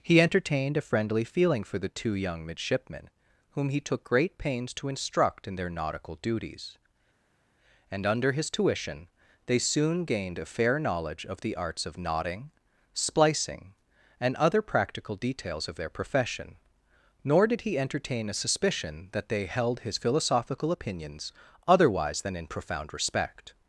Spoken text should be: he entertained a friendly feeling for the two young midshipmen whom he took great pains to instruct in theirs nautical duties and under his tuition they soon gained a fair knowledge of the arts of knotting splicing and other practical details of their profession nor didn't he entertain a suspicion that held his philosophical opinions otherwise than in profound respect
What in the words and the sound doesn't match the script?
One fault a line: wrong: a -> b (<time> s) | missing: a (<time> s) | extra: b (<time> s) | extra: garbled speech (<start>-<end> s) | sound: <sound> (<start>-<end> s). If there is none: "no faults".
wrong: theirs -> their (5.5 s)
wrong: didn't -> did (17.5 s)
extra: they (19.3 s)